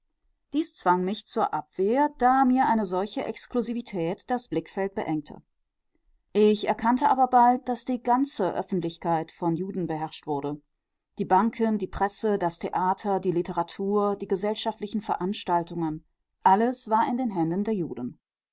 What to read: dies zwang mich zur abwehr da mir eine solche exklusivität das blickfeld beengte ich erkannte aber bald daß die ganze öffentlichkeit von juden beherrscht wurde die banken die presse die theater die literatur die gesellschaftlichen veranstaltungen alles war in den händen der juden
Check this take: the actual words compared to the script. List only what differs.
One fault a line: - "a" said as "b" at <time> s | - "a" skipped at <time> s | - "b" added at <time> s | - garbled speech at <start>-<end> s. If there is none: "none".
- "die" said as "das" at 12.4 s